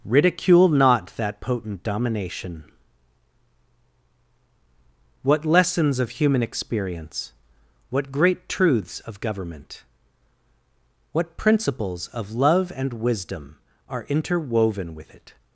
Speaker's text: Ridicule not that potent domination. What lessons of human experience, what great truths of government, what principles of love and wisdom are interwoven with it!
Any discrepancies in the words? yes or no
no